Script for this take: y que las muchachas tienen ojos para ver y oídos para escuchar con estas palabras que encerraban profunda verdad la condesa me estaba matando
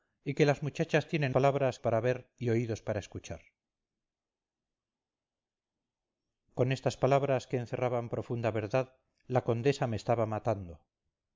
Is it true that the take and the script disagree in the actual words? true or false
true